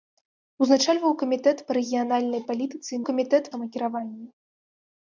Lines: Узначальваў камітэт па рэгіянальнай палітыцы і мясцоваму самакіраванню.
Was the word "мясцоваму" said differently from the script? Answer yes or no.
yes